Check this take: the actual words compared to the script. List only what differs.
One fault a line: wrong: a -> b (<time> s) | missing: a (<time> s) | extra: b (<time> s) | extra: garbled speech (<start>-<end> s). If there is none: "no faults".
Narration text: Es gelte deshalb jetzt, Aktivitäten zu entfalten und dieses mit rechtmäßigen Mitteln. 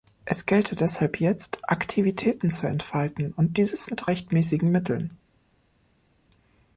no faults